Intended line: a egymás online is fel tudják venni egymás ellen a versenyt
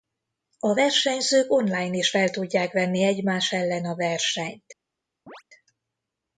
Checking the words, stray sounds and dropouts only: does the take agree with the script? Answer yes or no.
no